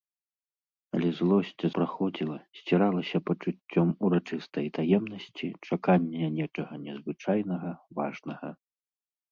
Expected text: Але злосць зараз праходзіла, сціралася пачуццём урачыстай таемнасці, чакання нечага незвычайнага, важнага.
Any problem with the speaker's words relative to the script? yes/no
yes